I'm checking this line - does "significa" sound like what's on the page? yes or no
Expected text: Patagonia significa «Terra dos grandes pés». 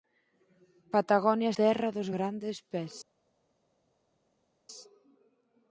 no